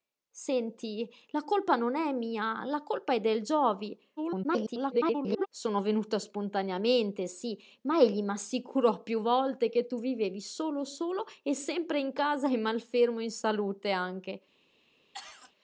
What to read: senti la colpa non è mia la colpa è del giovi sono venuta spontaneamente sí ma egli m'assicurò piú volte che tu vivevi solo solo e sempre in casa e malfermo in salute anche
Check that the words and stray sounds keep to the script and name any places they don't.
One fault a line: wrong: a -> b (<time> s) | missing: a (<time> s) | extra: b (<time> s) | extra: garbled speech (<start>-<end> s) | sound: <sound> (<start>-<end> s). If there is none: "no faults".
extra: garbled speech (4.2-5.5 s)
sound: cough (15.1-15.5 s)